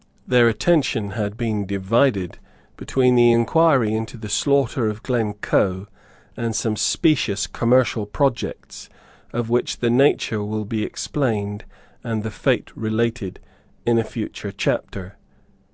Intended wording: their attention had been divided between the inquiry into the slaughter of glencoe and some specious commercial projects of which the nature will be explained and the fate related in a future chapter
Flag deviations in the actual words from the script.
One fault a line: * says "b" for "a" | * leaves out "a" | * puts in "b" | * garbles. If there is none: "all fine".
all fine